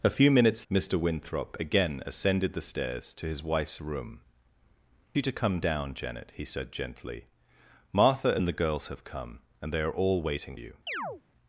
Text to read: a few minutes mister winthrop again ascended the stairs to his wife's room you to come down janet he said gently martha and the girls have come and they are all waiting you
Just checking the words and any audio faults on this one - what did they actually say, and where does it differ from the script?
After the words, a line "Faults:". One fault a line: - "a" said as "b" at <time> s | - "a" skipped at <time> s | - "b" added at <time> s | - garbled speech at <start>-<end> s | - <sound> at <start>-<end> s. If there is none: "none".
a few minutes mister winthrop again ascended the stairs to his wife's room you to come down janet he said gently martha and the girls have come and they are all waiting you
Faults:
- chirp at 10.9-11.2 s